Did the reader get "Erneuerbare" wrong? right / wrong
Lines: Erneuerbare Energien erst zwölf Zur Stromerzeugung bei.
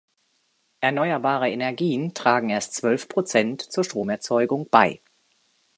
right